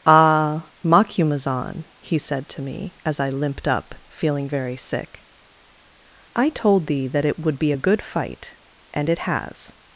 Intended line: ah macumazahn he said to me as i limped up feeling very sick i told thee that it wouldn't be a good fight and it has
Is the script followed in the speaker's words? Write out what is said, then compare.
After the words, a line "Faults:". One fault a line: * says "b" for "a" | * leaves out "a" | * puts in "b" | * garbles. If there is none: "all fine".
ah macumazahn he said to me as i limped up feeling very sick i told thee that it would be a good fight and it has
Faults:
* says "would" for "wouldn't"